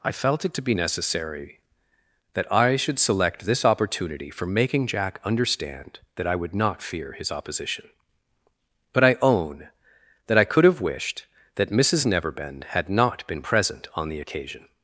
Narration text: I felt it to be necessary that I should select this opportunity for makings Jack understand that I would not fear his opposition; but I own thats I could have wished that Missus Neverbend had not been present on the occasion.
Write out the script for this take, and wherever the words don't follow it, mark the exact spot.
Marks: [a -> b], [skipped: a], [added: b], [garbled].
I felt it to be necessary that I should select this opportunity for [makings -> making] Jack understand that I would not fear his opposition; but I own [thats -> that] I could have wished that Missus Neverbend had not been present on the occasion.